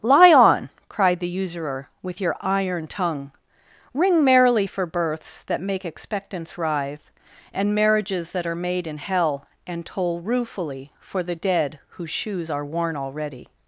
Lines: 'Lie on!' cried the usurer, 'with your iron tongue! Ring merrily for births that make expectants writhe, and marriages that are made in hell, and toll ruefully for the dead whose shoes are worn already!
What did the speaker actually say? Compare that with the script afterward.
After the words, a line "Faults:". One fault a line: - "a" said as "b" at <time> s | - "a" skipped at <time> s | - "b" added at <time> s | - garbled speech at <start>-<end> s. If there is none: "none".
'Lie on!' cried the usurer, 'with your iron tongue! Ring merrily for births that make expectants writhe, and marriages that are made in hell, and toll ruefully for the dead whose shoes are worn already!
Faults:
none